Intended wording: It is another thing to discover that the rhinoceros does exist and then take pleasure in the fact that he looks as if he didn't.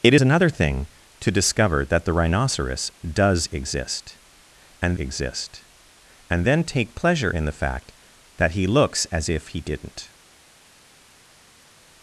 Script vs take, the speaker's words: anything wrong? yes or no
yes